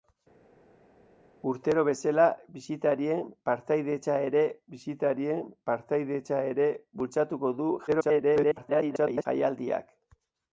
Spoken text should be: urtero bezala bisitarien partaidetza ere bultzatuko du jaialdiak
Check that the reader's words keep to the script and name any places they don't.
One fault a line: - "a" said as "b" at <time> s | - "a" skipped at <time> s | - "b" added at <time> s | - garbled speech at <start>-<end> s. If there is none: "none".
- "bisitarien partaidetza ere" added at 4.7 s
- garbled speech at 7.9-9.3 s